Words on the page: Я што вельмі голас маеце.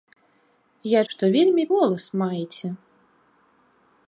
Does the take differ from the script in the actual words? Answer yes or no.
no